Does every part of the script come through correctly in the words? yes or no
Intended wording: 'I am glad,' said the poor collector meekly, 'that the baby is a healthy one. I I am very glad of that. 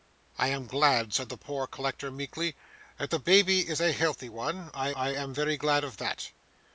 yes